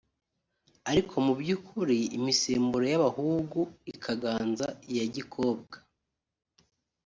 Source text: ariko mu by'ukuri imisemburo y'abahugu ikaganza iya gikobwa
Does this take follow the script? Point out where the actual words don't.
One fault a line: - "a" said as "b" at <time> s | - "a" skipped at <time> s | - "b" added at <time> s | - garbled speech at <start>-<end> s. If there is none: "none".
none